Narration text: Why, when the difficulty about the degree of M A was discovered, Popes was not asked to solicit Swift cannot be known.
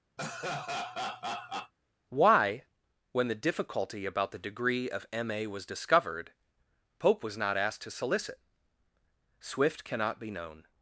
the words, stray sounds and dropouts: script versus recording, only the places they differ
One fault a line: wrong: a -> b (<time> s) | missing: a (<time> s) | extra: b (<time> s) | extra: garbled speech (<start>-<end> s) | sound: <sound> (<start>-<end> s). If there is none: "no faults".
sound: laugh (0.2-1.7 s)
wrong: Popes -> Pope (7.0 s)